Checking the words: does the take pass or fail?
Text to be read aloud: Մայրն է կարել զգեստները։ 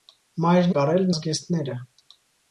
pass